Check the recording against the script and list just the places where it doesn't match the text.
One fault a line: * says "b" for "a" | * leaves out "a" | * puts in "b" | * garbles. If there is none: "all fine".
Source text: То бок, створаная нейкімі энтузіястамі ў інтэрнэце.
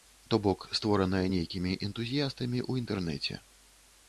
all fine